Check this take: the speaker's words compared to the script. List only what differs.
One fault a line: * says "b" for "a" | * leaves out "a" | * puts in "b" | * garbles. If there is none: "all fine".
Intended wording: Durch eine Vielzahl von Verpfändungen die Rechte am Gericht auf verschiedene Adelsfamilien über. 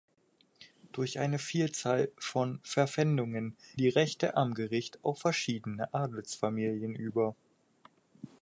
all fine